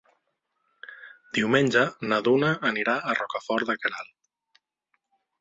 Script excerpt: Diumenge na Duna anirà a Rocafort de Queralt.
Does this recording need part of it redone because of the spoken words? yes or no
no